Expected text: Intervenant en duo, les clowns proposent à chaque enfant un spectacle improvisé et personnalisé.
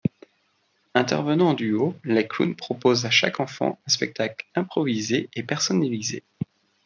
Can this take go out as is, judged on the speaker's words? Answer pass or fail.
pass